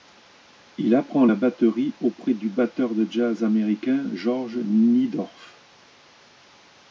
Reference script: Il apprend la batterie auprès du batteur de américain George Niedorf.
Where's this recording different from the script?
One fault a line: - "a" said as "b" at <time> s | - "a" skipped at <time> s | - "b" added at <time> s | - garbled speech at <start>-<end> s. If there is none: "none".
- "jazz" added at 3.1 s